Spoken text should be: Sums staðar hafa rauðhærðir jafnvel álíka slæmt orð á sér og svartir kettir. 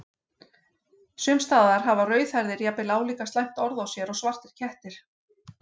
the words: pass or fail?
pass